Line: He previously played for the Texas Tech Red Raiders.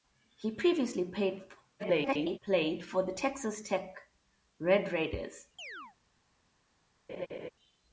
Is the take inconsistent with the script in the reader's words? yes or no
yes